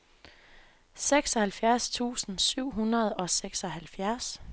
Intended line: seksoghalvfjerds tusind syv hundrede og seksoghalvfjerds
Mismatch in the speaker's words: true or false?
false